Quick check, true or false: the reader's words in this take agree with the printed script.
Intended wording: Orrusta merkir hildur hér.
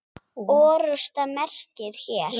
false